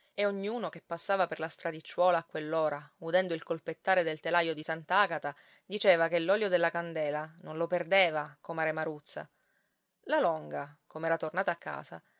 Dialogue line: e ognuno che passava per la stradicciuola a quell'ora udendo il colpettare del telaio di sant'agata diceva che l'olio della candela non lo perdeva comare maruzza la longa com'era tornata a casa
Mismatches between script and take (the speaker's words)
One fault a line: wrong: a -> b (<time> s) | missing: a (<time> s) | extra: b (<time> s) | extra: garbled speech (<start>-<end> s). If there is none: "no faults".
no faults